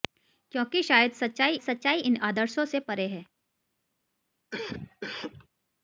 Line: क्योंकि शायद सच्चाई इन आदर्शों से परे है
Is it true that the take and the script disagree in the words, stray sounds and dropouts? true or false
true